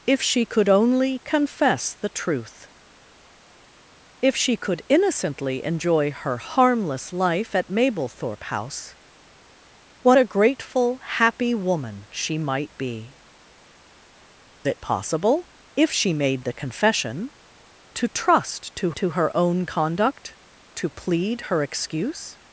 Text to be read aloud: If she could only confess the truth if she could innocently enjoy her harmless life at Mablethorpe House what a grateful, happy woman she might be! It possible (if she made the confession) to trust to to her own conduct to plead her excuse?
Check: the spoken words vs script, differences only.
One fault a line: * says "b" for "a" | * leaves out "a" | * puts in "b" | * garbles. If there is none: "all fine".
all fine